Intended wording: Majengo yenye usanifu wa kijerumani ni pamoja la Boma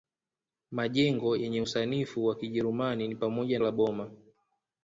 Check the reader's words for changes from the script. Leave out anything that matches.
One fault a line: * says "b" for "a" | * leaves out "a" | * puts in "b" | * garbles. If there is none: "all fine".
all fine